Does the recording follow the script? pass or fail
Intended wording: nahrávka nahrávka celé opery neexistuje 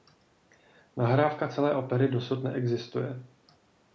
fail